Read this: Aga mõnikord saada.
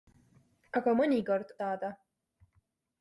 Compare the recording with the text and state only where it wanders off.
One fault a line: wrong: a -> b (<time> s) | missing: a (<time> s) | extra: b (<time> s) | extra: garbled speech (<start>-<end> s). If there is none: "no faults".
no faults